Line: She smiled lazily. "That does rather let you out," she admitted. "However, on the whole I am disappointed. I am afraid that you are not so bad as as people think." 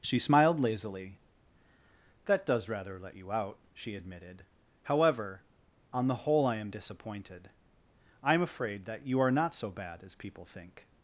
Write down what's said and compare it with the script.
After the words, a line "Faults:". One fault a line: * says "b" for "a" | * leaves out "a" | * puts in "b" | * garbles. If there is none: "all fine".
She smiled lazily. "That does rather let you out," she admitted. "However, on the whole I am disappointed. I am afraid that you are not so bad as people think."
Faults:
* leaves out "as"